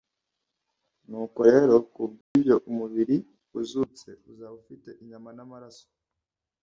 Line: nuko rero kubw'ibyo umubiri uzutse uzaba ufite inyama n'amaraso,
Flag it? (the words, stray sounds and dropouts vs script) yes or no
yes